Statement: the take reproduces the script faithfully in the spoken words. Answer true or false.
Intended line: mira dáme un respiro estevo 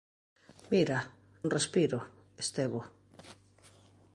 false